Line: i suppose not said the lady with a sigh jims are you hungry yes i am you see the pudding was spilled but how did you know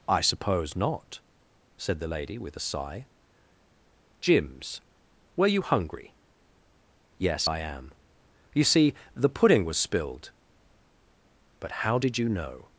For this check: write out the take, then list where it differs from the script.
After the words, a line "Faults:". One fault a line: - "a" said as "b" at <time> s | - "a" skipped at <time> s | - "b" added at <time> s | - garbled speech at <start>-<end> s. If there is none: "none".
i suppose not said the lady with a sigh jims were you hungry yes i am you see the pudding was spilled but how did you know
Faults:
- "are" said as "were" at 5.3 s